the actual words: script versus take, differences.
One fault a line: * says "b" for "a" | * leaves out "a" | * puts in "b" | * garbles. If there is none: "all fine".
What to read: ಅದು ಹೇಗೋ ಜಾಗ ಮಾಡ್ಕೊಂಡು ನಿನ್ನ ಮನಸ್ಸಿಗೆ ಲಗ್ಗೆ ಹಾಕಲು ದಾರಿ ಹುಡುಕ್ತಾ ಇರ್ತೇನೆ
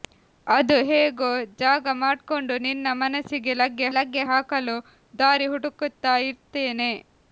* puts in "ಲಗ್ಗೆ"